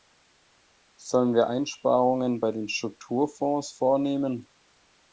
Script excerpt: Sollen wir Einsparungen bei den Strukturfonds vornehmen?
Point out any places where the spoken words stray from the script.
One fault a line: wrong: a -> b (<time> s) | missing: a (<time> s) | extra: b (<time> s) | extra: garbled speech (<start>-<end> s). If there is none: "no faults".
no faults